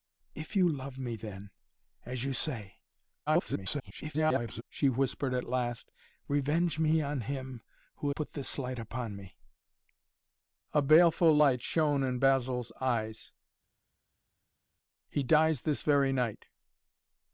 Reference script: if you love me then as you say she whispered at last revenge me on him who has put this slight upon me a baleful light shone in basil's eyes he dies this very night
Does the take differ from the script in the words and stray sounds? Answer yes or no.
yes